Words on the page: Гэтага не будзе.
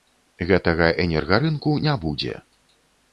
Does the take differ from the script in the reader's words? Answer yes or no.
yes